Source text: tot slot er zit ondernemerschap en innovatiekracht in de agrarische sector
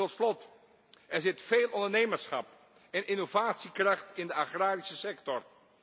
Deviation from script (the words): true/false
true